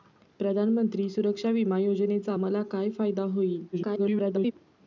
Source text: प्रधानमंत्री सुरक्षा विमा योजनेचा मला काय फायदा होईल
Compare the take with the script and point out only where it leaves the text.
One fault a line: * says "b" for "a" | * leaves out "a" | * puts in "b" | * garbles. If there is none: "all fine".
* garbles